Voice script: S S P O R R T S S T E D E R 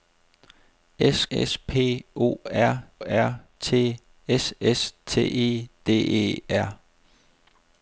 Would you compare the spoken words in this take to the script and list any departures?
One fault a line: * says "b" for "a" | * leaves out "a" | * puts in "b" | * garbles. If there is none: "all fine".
all fine